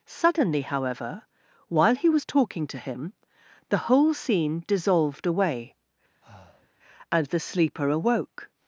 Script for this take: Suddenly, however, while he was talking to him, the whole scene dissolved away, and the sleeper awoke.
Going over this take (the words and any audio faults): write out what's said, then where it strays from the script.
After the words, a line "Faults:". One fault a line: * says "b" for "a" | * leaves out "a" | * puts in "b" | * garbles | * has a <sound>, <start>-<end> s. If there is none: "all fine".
Suddenly, however, while he was talking to him, the whole scene dissolved away, and the sleeper awoke.
Faults:
* has a breath, 6.2-6.7 s